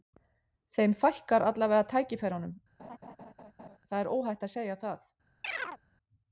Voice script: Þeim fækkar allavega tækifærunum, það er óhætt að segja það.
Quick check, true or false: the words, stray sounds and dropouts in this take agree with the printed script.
false